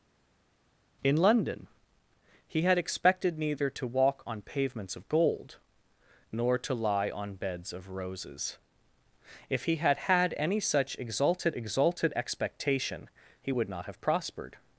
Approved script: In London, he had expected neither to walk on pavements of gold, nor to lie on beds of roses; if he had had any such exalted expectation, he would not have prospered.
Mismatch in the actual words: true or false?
true